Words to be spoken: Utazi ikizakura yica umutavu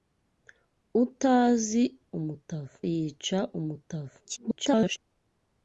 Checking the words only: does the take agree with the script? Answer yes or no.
no